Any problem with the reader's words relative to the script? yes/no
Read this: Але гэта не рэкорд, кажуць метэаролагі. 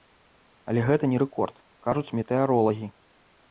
no